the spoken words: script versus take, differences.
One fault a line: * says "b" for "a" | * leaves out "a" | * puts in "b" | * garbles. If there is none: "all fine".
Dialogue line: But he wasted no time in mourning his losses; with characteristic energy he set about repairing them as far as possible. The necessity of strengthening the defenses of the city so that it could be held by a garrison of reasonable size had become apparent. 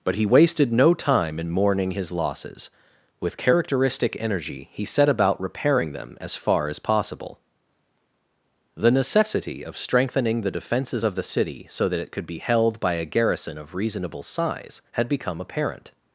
all fine